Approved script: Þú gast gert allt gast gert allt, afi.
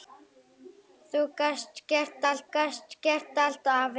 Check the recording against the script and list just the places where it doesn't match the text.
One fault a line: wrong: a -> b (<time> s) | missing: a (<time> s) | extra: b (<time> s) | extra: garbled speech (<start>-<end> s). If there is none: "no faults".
no faults